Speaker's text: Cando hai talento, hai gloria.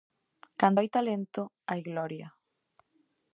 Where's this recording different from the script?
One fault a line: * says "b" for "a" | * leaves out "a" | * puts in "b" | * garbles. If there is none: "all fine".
all fine